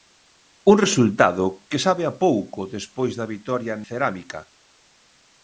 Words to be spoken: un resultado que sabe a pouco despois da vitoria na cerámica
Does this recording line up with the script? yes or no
no